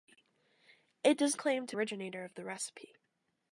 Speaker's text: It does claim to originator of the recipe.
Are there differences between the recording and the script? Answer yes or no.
no